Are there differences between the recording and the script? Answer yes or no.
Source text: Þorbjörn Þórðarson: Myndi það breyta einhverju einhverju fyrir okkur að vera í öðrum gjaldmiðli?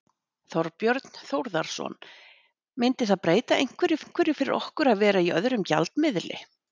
no